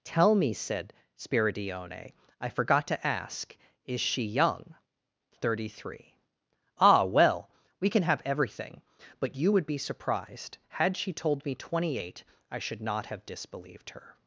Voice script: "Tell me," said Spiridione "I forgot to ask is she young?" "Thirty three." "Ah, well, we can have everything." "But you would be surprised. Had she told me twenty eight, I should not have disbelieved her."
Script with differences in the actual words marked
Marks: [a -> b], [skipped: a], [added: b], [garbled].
"Tell me," said Spiridione "I forgot to ask is she young?" "Thirty three." "Ah, well, we can have everything." "But you would be surprised. Had she told me twenty eight, I should not have disbelieved her."